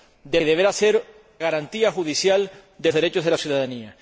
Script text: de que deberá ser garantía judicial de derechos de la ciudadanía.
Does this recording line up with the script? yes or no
yes